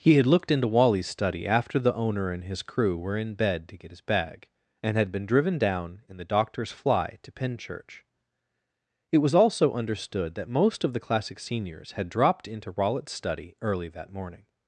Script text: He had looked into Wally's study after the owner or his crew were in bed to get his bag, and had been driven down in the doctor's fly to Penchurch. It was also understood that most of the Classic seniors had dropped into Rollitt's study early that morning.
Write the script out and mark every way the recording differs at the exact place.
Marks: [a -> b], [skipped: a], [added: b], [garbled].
He had looked into Wally's study after the owner [or -> and] his crew were in bed to get his bag, and had been driven down in the doctor's fly to Penchurch. It was also understood that most of the Classic seniors had dropped into Rollitt's study early that morning.